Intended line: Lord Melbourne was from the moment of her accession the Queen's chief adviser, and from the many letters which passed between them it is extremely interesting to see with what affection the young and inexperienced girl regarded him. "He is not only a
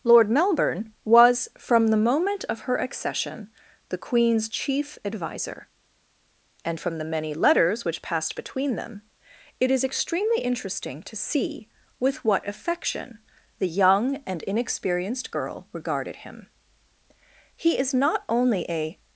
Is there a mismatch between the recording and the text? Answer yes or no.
no